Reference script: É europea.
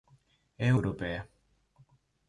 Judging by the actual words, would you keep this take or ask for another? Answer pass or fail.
pass